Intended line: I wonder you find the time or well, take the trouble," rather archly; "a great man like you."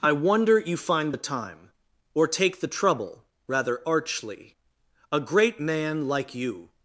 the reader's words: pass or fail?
fail